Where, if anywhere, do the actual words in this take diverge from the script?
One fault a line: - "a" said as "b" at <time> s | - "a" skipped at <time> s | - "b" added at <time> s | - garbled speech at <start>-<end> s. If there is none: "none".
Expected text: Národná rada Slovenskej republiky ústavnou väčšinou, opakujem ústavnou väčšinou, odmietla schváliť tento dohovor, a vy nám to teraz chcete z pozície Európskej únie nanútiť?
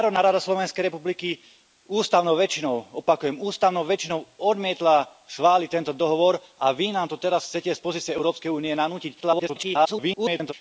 - garbled speech at 9.2-10.5 s